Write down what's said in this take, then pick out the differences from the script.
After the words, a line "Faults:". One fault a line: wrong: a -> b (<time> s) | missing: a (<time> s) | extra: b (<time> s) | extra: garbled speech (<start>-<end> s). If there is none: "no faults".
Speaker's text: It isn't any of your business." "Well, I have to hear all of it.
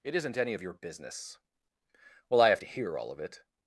It isn't any of your business." "Well, I have to hear all of it.
Faults:
no faults